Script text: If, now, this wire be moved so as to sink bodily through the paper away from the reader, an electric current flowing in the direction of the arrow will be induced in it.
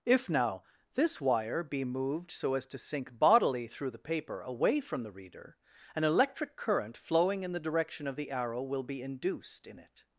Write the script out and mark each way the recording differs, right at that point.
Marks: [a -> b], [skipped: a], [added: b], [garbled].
If, now, this wire be moved so as to sink bodily through the paper away from the reader, an electric current flowing in the direction of the arrow will be induced in it.